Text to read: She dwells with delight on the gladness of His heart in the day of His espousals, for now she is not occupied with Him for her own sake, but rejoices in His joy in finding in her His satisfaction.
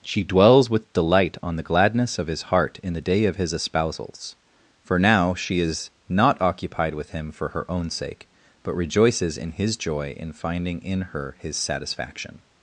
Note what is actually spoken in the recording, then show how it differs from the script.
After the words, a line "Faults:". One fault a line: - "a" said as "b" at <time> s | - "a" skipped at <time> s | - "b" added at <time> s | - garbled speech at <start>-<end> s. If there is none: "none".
She dwells with delight on the gladness of His heart in the day of His espousals, for now she is not occupied with Him for her own sake, but rejoices in His joy in finding in her His satisfaction.
Faults:
none